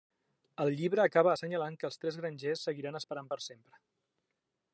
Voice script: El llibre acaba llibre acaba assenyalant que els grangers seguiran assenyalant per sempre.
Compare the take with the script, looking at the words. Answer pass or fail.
fail